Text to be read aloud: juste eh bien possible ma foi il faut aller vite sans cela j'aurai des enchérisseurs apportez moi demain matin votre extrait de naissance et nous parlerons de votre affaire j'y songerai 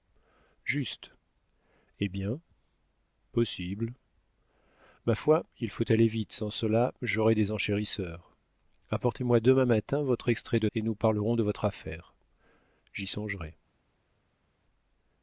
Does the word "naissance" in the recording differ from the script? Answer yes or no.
yes